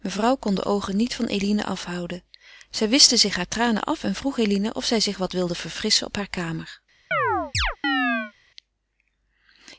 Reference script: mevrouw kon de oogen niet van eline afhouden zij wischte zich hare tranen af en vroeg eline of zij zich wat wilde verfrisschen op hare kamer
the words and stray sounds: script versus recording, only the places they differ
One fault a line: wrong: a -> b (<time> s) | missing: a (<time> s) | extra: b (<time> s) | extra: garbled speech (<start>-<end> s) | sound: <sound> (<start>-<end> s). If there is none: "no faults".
sound: chirp (7.1-8.3 s)